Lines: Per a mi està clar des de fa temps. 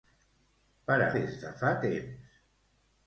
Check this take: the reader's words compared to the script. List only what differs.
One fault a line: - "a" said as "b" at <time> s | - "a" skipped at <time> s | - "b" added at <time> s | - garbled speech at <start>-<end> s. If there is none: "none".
- "mi està clar" skipped at 1.1 s